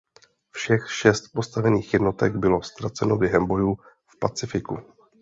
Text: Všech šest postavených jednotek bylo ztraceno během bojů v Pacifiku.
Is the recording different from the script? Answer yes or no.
no